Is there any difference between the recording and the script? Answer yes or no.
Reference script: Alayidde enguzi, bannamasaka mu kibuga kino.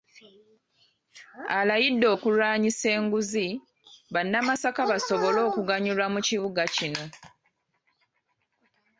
yes